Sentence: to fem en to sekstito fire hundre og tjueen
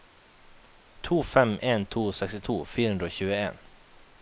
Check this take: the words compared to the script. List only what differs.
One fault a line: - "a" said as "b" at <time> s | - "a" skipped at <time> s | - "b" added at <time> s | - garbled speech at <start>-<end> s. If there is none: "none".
none